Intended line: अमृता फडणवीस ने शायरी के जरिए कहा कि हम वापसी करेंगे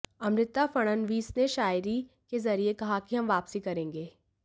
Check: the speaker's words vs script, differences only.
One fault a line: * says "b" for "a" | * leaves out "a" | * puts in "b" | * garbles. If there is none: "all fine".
all fine